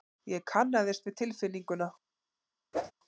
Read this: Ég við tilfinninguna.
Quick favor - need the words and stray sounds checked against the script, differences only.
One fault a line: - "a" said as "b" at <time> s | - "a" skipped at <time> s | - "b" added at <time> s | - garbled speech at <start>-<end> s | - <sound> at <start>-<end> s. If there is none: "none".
- "kannaðist" added at 0.5 s
- whoosh at 2.7-2.9 s